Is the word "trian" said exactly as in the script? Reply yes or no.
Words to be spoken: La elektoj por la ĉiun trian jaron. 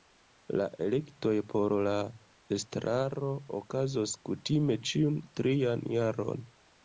yes